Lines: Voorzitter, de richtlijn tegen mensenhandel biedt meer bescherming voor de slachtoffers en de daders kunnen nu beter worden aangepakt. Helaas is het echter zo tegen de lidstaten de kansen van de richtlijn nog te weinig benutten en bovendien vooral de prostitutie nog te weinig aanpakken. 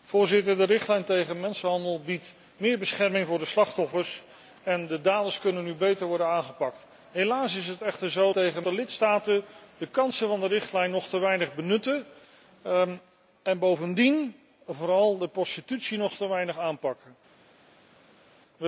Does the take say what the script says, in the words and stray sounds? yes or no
yes